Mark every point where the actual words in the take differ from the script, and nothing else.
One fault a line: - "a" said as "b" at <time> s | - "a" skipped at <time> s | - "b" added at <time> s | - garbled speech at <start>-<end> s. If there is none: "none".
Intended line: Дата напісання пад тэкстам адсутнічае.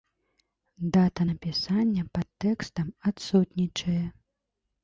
none